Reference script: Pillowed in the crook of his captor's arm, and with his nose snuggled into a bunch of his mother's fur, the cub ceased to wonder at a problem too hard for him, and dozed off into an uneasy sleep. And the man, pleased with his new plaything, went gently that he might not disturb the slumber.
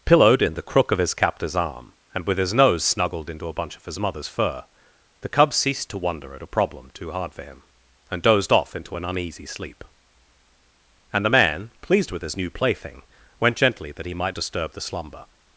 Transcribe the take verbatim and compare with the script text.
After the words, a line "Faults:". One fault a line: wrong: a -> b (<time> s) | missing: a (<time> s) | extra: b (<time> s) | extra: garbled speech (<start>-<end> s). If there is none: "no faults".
Pillowed in the crook of his captor's arm, and with his nose snuggled into a bunch of his mother's fur, the cub ceased to wonder at a problem too hard for him, and dozed off into an uneasy sleep. And the man, pleased with his new plaything, went gently that he might disturb the slumber.
Faults:
missing: not (14.4 s)